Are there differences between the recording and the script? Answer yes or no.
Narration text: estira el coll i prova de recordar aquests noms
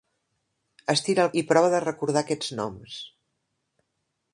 yes